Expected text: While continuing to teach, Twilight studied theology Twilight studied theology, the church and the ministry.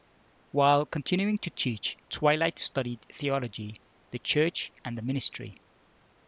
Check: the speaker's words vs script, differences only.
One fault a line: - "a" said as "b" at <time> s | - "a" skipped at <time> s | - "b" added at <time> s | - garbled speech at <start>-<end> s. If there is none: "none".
- "Twilight studied theology" skipped at 3.8 s